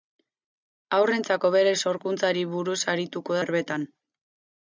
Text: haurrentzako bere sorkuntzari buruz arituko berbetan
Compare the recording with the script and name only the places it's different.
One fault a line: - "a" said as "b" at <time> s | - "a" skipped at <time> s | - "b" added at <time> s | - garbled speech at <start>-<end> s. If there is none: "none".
none